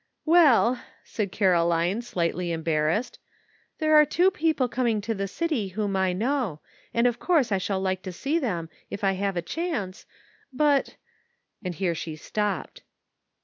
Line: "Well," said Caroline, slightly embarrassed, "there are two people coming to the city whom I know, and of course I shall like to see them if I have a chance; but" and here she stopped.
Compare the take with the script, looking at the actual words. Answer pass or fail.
pass